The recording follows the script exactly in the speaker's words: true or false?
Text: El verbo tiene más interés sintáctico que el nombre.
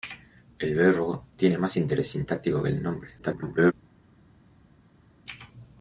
false